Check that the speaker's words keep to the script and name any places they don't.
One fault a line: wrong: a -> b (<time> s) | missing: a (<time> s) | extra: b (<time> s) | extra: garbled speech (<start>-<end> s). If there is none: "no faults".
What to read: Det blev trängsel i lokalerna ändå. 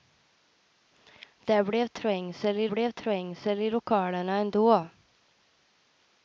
extra: blev trängsel i (2.7 s)